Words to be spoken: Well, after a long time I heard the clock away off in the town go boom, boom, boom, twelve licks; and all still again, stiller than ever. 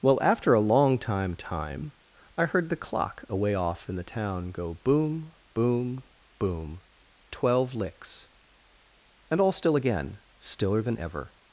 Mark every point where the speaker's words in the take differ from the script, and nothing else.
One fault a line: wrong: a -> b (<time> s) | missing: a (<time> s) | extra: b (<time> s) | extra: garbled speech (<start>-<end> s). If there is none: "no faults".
extra: time (1.4 s)